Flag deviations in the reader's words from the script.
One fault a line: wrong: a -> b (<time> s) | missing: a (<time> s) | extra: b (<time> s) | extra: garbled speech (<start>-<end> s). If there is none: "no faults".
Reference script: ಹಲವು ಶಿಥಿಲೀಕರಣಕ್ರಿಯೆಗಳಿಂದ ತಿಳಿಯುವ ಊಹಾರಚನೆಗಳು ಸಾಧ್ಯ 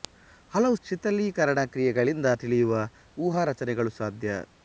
no faults